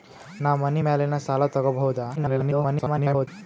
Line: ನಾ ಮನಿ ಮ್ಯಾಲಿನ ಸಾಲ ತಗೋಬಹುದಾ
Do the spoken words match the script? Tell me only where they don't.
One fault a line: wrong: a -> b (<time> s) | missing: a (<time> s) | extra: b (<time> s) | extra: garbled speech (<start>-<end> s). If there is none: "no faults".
extra: garbled speech (2.2-3.3 s)